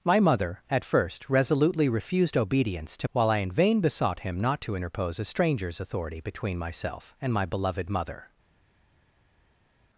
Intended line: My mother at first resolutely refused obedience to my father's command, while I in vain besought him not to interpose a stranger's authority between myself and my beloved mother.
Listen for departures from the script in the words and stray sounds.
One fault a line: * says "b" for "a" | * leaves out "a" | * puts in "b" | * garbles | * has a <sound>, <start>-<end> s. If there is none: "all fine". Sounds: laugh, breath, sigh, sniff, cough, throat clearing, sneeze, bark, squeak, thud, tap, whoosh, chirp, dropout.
* leaves out "my father's command"